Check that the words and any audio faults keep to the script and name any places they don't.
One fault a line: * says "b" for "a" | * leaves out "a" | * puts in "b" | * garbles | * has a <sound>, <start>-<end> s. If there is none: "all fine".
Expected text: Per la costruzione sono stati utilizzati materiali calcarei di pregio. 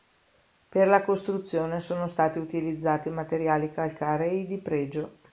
all fine